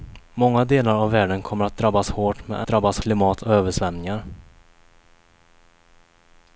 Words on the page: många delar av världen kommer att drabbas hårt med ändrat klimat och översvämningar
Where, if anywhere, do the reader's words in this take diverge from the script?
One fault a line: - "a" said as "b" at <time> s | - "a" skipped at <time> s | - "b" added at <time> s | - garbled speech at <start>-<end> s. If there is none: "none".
- "ändrat" said as "drabbas" at 2.7 s